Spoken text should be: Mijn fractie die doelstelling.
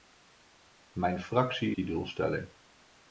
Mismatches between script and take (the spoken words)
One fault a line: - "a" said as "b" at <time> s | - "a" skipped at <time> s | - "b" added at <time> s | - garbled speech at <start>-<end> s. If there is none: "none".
none